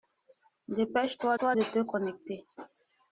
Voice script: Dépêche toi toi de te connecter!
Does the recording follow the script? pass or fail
pass